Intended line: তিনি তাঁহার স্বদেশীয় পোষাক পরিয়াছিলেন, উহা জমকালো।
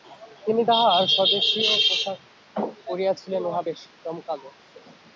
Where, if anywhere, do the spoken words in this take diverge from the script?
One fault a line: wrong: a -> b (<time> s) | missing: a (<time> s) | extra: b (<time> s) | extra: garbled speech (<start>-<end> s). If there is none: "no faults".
extra: বেশ (3.6 s)